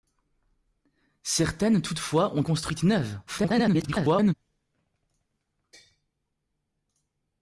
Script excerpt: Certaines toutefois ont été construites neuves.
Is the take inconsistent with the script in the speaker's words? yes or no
yes